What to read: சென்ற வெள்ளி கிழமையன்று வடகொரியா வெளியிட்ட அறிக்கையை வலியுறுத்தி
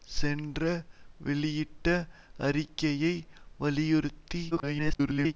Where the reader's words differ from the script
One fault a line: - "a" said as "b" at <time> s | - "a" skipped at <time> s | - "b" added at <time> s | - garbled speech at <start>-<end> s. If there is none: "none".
- "வெள்ளி கிழமையன்று வடகொரியா" skipped at 0.6 s
- garbled speech at 4.5-5.3 s